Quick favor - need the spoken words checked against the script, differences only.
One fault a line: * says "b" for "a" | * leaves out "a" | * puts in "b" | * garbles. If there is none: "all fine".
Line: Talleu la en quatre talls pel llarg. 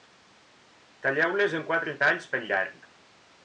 * says "les" for "la"